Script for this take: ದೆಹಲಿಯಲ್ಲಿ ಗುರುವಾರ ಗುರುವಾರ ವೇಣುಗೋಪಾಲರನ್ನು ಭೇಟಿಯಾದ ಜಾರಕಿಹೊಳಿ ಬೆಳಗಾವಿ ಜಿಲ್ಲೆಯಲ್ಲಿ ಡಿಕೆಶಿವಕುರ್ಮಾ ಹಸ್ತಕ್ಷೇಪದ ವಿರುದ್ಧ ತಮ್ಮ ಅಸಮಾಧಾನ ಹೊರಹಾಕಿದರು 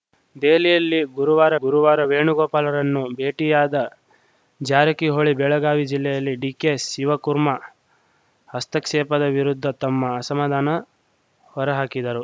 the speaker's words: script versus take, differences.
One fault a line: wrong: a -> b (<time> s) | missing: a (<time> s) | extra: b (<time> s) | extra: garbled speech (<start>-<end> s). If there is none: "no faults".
no faults